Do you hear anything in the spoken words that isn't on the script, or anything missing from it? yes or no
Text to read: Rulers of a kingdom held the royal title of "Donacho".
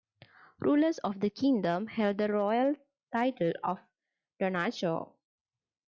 yes